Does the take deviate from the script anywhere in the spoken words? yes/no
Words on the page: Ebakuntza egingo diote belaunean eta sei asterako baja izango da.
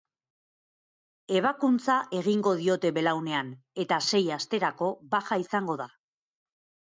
no